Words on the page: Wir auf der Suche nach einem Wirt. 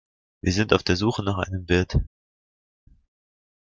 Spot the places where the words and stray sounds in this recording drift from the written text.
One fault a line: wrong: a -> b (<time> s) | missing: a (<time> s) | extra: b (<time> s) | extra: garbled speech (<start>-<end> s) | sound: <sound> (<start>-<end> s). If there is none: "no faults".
extra: sind (0.5 s)